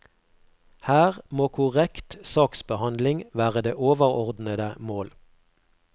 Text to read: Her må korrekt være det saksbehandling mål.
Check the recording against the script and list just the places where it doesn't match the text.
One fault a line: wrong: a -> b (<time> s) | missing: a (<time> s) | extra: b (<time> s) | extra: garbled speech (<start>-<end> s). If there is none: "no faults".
extra: saksbehandling (2.2 s)
wrong: saksbehandling -> overordnede (3.7 s)